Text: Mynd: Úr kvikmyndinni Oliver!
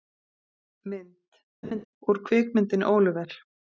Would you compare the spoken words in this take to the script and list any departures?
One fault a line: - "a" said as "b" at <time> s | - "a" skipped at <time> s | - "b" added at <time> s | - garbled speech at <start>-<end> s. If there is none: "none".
none